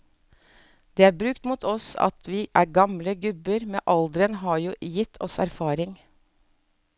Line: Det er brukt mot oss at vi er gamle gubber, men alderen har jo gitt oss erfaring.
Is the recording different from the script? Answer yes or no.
no